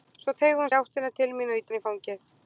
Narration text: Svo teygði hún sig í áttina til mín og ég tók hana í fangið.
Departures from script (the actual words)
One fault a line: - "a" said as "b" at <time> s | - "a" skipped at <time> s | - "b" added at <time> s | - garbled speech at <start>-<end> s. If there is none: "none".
- "sig" skipped at 0.7 s
- "tók" skipped at 1.7 s